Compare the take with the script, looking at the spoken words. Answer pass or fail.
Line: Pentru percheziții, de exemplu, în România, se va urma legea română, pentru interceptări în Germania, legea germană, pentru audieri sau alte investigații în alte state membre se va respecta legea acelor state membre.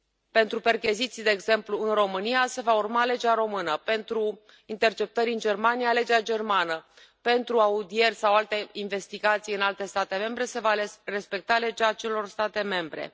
pass